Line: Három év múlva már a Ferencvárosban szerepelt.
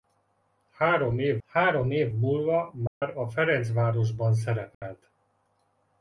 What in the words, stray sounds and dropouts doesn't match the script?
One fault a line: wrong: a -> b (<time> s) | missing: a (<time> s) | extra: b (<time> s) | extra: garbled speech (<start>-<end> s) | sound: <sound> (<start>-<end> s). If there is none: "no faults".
extra: három év (1.5 s)
sound: dropout (2.9-3.0 s)
sound: dropout (4.7-4.8 s)